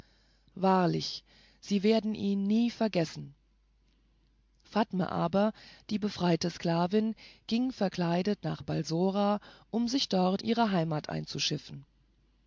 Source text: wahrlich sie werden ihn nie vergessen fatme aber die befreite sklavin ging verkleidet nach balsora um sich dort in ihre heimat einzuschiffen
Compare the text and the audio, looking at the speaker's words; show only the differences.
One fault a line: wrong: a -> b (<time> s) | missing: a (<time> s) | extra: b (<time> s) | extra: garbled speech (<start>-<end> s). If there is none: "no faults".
missing: in (10.4 s)